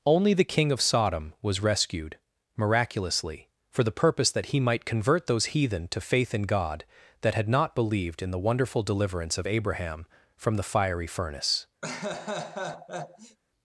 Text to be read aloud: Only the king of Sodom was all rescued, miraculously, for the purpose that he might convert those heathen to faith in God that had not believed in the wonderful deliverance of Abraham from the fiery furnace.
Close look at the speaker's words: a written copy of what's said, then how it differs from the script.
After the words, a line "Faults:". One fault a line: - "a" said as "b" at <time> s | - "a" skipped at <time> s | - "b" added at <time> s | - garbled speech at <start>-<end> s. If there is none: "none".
Only the king of Sodom was rescued, miraculously, for the purpose that he might convert those heathen to faith in God that had not believed in the wonderful deliverance of Abraham from the fiery furnace.
Faults:
- "all" skipped at 1.6 s